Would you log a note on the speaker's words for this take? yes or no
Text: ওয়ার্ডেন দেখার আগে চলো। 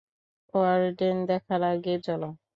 no